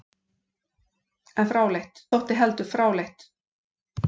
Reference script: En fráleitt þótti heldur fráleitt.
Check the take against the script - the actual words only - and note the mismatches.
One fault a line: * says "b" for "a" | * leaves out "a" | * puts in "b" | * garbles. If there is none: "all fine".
all fine